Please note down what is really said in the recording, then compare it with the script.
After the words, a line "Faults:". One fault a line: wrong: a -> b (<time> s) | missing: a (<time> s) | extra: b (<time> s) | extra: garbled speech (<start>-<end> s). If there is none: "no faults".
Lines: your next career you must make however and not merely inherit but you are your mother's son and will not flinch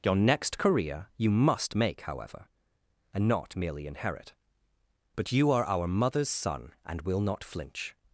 your next career you must make however and not merely inherit but you are our mother's son and will not flinch
Faults:
wrong: your -> our (5.7 s)